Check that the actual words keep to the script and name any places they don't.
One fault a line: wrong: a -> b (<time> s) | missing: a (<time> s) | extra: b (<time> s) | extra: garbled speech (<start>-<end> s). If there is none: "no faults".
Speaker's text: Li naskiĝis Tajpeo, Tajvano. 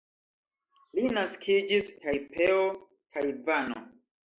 no faults